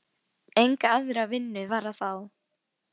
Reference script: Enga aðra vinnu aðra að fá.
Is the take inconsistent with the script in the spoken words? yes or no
yes